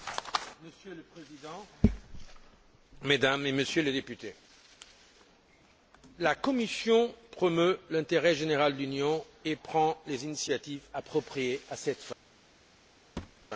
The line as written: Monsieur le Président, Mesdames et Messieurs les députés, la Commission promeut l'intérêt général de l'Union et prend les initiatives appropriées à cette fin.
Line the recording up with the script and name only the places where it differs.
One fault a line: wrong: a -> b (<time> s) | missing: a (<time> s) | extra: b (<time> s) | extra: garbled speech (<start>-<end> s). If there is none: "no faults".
no faults